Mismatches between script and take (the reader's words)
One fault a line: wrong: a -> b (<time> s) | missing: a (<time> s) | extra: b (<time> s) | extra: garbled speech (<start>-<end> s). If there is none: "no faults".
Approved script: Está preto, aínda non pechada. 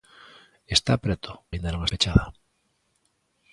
no faults